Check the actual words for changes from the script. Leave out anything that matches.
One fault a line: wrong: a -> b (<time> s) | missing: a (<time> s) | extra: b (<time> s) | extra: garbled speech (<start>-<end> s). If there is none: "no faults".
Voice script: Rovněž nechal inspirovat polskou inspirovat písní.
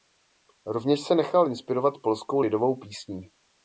extra: se (1.0 s)
wrong: inspirovat -> lidovou (2.4 s)